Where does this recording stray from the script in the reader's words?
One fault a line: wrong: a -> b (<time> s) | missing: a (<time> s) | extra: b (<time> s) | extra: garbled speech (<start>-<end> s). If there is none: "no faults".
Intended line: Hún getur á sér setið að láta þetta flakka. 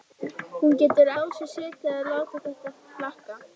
no faults